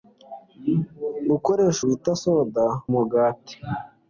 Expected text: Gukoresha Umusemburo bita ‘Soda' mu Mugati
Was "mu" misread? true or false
true